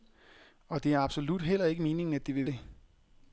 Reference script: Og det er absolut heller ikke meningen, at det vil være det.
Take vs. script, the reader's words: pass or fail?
fail